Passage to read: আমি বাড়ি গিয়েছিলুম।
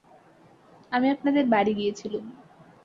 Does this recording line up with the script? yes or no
no